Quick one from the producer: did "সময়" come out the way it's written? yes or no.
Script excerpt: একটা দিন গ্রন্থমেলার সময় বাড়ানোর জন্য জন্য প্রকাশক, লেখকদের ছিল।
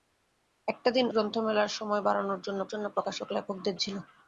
yes